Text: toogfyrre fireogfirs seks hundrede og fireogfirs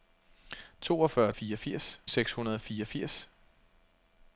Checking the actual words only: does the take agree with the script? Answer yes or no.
yes